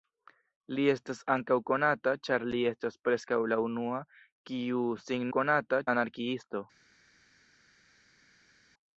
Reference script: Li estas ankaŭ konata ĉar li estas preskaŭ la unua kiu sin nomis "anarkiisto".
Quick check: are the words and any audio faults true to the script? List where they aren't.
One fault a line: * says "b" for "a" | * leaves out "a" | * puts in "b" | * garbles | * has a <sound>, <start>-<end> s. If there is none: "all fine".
* says "konata" for "nomis"